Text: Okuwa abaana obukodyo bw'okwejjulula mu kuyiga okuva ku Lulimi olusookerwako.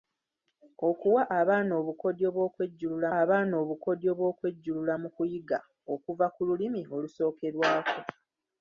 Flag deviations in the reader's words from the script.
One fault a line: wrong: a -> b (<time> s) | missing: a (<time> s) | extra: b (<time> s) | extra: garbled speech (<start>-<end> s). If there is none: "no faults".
extra: abaana obukodyo bw'okwejjulula (3.2 s)